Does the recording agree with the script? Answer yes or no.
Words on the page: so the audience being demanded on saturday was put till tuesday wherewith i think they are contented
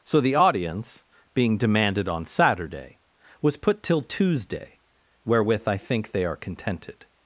yes